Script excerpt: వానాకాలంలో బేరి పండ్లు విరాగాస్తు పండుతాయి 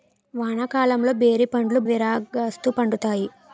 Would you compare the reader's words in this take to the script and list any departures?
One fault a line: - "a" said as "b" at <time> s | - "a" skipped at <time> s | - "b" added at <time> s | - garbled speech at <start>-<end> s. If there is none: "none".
none